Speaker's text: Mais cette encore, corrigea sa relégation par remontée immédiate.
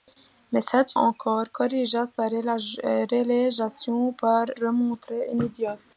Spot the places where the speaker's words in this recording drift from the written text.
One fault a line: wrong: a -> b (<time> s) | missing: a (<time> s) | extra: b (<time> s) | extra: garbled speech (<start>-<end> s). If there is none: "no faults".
no faults